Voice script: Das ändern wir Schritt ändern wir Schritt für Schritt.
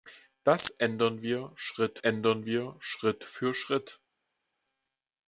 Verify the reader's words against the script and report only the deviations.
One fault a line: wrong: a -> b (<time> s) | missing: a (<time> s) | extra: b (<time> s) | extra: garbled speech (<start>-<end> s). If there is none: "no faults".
no faults